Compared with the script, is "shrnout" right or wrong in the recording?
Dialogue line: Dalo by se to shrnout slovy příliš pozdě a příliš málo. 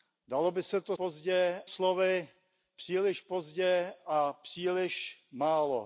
wrong